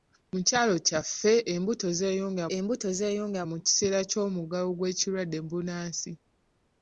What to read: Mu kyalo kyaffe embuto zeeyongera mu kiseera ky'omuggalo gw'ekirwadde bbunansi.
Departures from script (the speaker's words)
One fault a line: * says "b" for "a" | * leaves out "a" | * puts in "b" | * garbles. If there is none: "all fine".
* puts in "embuto zeeyongera"